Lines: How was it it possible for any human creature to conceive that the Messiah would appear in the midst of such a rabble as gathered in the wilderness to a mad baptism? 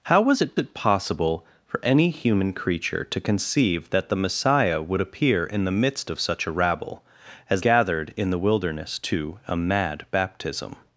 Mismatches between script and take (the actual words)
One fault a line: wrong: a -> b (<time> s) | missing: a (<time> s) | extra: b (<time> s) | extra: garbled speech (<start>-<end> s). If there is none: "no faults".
no faults